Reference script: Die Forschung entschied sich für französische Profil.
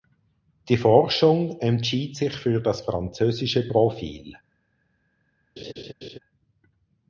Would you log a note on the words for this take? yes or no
yes